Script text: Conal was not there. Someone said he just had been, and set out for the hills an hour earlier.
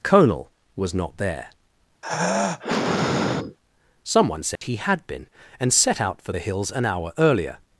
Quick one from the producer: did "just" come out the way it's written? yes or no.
no